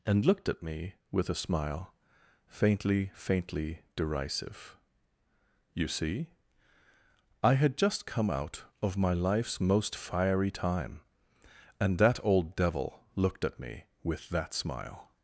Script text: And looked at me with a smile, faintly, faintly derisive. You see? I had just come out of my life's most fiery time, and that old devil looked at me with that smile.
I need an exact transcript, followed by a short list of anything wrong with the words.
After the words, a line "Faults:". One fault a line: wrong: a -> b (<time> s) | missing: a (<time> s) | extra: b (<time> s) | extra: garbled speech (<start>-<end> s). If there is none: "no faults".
And looked at me with a smile, faintly, faintly derisive. You see? I had just come out of my life's most fiery time, and that old devil looked at me with that smile.
Faults:
no faults